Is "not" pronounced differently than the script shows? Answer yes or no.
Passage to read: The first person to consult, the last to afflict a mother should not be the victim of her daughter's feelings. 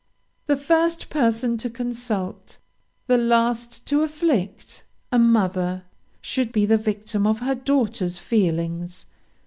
yes